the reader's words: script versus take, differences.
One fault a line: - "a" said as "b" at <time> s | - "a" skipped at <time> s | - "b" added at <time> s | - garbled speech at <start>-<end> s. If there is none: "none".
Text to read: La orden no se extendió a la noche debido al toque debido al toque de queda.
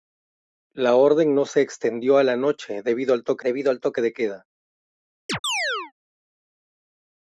none